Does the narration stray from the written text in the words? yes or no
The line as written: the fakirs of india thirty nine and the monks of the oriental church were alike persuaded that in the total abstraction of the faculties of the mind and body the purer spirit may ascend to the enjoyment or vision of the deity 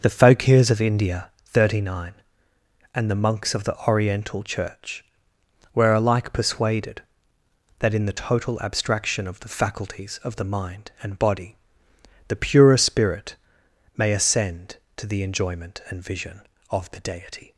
yes